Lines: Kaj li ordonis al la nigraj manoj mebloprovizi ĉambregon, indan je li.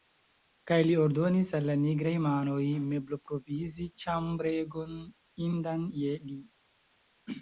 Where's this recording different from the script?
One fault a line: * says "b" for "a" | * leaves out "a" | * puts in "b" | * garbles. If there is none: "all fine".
all fine